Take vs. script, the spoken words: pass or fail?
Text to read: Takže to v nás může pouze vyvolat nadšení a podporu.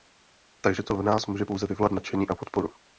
pass